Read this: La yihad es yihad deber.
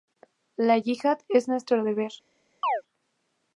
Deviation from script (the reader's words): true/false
true